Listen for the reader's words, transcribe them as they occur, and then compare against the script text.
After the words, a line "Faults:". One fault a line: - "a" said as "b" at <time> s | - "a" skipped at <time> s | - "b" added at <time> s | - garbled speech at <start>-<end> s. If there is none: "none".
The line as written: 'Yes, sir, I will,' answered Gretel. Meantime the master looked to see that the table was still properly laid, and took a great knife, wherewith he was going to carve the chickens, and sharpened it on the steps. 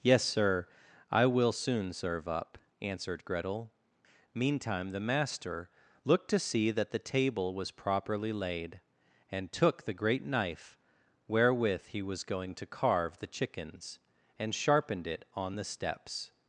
'Yes, sir, I will soon serve up,' answered Gretel. Meantime the master looked to see that the table was properly laid, and took the great knife, wherewith he was going to carve the chickens, and sharpened it on the steps.
Faults:
- "soon serve up" added at 1.5 s
- "still" skipped at 7.7 s
- "a" said as "the" at 9.8 s